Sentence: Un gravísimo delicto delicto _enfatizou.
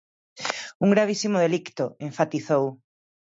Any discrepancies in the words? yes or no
yes